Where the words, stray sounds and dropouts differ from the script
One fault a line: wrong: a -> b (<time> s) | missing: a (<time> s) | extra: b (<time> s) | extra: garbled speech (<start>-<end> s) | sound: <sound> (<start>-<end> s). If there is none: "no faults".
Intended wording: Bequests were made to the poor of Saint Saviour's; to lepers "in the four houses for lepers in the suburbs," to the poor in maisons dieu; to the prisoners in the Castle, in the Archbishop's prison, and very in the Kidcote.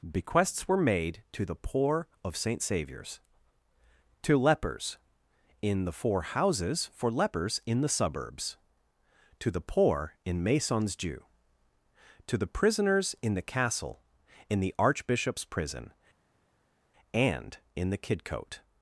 missing: very (17.6 s)